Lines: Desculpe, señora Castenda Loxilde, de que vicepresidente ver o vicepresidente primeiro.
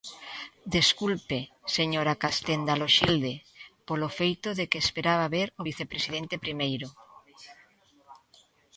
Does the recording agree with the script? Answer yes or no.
no